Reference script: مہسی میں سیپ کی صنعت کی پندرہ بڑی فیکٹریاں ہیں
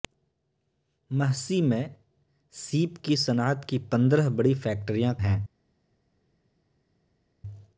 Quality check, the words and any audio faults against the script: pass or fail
pass